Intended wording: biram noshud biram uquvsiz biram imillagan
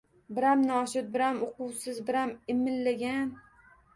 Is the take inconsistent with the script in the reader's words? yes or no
no